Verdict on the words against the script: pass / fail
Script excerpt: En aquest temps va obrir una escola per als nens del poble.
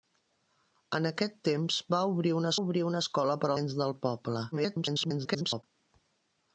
fail